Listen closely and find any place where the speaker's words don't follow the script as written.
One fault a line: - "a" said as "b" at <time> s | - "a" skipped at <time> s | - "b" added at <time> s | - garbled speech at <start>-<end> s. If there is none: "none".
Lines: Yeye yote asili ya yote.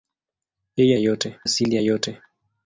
none